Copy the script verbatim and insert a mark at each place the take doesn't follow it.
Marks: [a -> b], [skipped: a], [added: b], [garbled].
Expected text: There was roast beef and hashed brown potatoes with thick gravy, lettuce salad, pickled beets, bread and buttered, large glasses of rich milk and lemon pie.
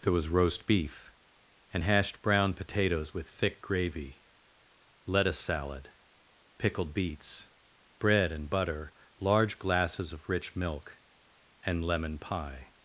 There was roast beef and hashed brown potatoes with thick gravy, lettuce salad, pickled beets, bread and [buttered, -> butter] large glasses of rich milk and lemon pie.